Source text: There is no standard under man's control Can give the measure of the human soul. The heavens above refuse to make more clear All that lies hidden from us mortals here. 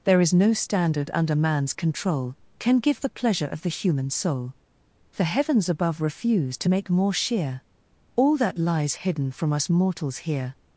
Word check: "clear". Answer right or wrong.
wrong